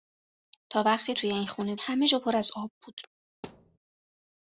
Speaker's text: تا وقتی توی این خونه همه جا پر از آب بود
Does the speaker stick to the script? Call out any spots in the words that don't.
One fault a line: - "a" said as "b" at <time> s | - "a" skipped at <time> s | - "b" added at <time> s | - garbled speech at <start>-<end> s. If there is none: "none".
none